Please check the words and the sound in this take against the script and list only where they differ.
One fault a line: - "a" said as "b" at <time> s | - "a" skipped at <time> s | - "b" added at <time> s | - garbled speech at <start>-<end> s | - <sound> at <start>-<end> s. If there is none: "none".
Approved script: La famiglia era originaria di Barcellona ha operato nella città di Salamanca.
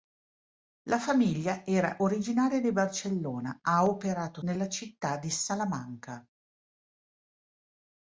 none